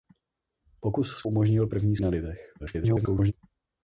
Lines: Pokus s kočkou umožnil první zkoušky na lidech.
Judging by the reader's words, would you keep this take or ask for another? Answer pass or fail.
fail